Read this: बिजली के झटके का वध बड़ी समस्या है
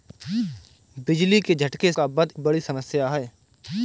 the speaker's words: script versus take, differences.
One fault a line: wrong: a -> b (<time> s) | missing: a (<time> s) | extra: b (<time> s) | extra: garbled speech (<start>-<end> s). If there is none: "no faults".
no faults